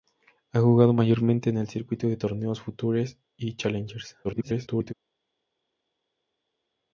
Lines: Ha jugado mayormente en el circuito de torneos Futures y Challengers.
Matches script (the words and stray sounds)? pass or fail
fail